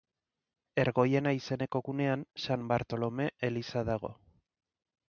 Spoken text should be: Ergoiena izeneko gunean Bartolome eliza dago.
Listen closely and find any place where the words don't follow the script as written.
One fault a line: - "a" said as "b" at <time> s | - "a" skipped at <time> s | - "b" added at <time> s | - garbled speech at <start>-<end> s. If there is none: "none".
- "San" added at 2.5 s